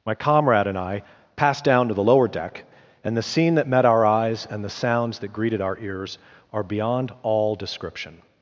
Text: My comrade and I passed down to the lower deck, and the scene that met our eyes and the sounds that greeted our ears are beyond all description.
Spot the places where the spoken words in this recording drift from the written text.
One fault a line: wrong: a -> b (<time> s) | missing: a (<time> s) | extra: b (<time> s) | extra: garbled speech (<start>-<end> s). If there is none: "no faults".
no faults